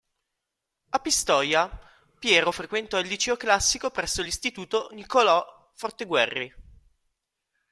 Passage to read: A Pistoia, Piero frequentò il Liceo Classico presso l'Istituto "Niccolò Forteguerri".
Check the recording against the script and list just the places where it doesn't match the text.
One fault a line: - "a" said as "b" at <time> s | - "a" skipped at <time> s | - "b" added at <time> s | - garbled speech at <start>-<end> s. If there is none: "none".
none